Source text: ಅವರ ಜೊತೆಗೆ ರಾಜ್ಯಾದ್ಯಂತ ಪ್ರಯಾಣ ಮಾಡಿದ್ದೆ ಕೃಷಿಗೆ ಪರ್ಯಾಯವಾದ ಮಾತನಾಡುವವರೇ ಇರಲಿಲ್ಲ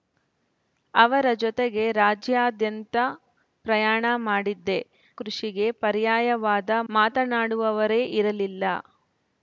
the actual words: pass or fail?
pass